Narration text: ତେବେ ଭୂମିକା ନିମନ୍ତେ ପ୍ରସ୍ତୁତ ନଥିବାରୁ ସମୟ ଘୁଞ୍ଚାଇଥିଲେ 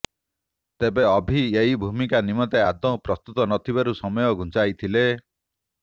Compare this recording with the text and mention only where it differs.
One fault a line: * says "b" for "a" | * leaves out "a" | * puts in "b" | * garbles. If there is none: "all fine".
* puts in "ଅଭି ଏହି"
* puts in "ଆଦୌ"